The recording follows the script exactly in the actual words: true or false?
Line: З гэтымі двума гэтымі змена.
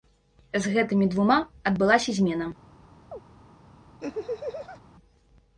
false